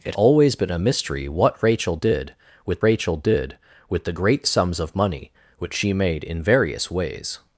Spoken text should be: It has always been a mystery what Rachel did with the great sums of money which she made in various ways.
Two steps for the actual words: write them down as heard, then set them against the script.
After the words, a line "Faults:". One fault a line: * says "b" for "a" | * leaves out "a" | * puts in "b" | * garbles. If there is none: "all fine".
It always been a mystery what Rachel did with Rachel did with the great sums of money which she made in various ways.
Faults:
* leaves out "has"
* puts in "Rachel did with"